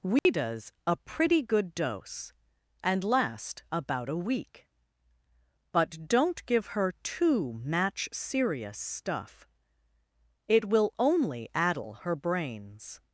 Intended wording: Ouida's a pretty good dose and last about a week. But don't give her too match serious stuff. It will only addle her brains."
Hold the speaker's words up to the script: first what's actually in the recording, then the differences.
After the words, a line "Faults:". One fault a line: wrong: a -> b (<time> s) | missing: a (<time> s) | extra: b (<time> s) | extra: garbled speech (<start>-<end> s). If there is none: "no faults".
Ouida's a pretty good dose and last about a week. But don't give her too match serious stuff. It will only addle her brains."
Faults:
no faults